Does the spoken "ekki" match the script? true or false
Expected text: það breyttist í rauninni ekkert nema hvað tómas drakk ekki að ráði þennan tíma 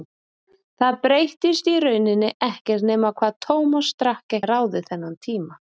false